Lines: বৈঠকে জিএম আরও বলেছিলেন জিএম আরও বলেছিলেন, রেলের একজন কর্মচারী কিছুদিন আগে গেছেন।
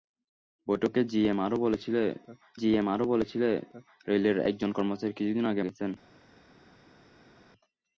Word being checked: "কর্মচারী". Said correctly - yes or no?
yes